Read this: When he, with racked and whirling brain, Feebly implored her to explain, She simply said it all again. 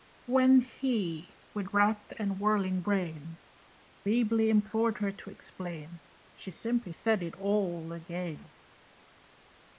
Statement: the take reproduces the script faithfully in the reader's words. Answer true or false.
true